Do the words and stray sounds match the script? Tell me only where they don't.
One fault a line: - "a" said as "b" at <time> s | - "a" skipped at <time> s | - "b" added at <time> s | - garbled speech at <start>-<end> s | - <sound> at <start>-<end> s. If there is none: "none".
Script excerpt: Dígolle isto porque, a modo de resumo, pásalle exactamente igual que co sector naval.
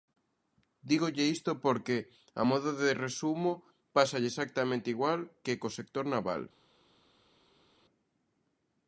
none